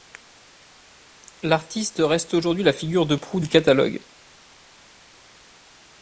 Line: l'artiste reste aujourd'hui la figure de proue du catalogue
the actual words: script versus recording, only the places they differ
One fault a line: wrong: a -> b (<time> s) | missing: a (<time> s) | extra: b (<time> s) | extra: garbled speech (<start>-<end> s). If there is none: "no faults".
no faults